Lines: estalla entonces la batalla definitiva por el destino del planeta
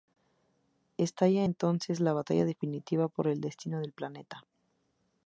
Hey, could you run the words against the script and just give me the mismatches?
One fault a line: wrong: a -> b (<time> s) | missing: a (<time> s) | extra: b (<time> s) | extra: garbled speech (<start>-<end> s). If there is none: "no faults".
no faults